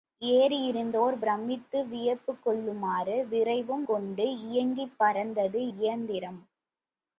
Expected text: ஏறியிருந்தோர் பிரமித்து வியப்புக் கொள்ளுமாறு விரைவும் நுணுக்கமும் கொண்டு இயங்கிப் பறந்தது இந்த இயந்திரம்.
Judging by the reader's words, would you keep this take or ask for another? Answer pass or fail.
fail